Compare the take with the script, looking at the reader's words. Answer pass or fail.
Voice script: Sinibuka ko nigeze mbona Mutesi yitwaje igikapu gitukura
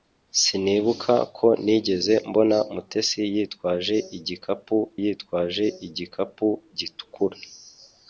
fail